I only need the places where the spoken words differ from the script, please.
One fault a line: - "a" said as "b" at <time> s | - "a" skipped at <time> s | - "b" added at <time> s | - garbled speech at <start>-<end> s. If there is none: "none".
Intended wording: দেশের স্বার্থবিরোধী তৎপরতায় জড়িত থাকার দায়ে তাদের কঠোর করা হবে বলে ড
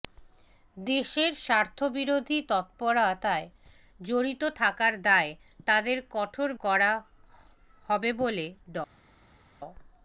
none